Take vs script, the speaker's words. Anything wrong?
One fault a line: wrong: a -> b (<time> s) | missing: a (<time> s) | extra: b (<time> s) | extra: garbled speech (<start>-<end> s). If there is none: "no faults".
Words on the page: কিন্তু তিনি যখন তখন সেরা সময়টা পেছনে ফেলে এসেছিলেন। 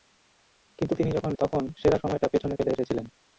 no faults